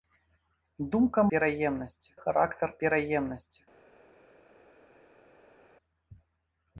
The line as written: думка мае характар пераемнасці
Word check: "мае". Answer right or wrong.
wrong